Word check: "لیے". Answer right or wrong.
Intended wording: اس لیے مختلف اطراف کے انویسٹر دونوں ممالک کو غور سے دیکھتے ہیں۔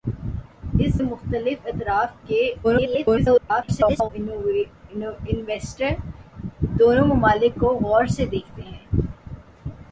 wrong